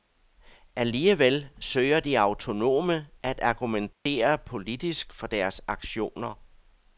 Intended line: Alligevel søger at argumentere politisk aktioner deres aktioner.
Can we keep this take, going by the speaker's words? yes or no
no